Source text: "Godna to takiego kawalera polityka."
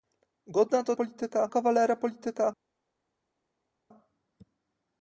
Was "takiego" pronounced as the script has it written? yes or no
no